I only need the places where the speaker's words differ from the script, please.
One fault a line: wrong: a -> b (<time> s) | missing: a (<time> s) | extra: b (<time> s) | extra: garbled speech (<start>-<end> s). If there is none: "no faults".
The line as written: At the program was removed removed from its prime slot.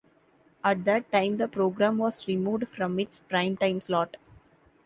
extra: that time (0.8 s)
missing: removed (2.7 s)
extra: time (3.6 s)